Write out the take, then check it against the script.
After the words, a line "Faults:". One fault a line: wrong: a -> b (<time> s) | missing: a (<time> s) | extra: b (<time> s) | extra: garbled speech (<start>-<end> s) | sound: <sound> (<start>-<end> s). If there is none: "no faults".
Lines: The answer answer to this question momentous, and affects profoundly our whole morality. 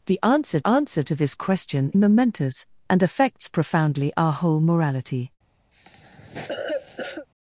The answer answer to this question momentous, and affects profoundly our whole morality.
Faults:
sound: cough (5.7-7.3 s)